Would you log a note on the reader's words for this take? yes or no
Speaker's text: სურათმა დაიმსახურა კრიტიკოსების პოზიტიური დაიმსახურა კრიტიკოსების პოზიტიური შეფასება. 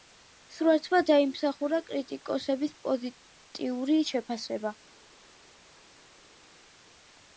yes